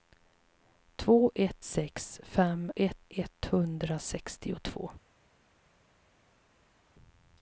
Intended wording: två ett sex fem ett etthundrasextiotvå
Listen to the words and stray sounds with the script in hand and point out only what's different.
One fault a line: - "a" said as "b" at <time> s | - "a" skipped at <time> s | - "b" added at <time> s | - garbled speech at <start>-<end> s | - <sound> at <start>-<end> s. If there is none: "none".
none